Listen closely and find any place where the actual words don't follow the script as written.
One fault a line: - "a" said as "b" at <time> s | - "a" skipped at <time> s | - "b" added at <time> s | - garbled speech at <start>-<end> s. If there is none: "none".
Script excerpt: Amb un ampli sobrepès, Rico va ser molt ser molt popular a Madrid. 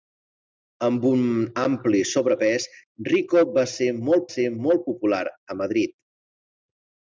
none